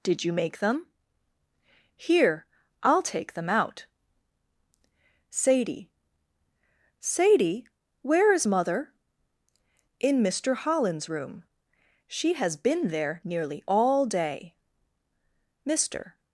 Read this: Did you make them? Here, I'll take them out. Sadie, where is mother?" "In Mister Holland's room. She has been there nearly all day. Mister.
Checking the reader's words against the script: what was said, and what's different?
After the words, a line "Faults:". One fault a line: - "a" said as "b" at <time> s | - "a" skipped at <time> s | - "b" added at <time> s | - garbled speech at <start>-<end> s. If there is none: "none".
Did you make them? Here, I'll take them out. Sadie Sadie, where is mother?" "In Mister Holland's room. She has been there nearly all day. Mister.
Faults:
- "Sadie" added at 7.0 s